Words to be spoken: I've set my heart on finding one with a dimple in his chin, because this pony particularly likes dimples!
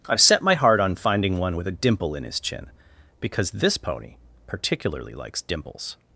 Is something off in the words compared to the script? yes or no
no